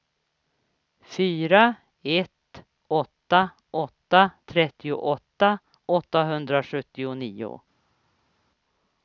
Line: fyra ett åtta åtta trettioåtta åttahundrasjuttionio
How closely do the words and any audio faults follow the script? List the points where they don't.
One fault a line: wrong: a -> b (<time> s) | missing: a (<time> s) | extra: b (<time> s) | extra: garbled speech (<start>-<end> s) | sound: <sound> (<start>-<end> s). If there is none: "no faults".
no faults